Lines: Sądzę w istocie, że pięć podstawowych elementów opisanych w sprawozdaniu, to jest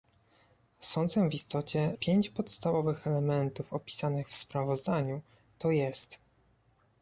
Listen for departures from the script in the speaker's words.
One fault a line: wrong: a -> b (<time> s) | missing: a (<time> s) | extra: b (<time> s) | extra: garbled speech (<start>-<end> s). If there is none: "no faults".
missing: że (1.9 s)